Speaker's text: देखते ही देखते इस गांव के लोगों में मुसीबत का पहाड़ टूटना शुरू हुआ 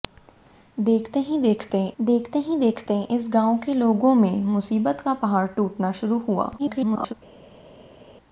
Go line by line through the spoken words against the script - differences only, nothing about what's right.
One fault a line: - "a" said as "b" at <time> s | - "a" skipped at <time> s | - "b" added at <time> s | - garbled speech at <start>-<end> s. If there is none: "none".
- "देखते ही देखते" added at 2.0 s
- garbled speech at 6.6-7.1 s